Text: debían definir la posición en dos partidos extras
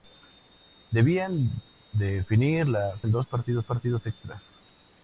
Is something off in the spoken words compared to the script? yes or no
yes